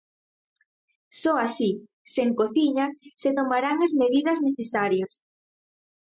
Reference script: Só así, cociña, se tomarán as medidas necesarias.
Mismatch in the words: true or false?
true